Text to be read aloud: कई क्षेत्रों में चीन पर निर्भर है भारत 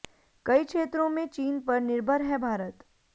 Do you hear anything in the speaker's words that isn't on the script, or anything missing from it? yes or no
no